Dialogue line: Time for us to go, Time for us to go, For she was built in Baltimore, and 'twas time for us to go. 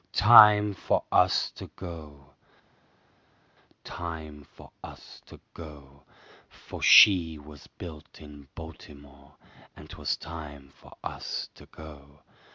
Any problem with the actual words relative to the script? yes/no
no